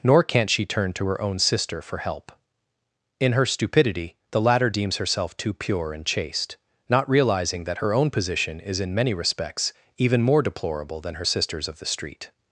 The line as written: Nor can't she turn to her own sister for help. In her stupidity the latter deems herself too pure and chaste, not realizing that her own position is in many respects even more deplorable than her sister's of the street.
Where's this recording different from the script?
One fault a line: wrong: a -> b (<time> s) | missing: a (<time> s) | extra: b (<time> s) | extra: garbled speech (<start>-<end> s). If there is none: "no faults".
no faults